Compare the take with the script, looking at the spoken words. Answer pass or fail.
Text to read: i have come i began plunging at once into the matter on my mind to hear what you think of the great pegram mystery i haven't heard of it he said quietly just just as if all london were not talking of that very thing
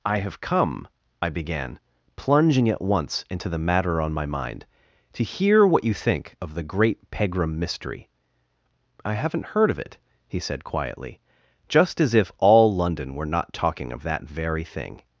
fail